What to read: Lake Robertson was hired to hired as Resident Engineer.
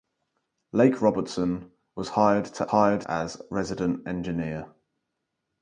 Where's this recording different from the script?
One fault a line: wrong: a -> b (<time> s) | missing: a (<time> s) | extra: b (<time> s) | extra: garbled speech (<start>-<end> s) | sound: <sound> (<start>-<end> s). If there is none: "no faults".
no faults